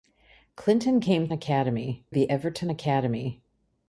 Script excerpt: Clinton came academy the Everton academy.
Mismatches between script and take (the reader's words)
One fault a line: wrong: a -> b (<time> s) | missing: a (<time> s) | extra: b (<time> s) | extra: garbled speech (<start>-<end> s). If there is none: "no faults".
no faults